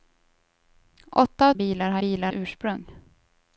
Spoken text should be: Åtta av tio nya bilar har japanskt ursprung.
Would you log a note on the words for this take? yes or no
yes